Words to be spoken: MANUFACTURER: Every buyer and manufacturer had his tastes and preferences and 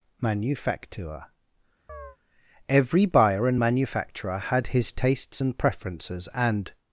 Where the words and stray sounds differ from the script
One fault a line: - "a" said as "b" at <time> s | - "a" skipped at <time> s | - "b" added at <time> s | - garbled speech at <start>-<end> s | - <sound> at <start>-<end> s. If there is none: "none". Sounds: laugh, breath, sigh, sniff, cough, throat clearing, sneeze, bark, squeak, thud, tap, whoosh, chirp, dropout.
- chirp at 1.9-2.2 s